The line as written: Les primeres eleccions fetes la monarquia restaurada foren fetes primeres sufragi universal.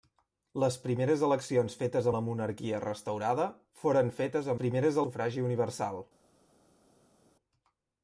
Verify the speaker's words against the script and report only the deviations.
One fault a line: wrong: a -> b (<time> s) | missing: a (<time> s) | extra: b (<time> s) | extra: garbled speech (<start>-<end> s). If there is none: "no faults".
no faults